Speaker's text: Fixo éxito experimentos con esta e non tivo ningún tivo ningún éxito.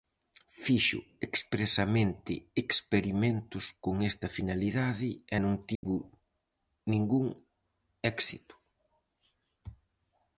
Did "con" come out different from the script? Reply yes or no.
no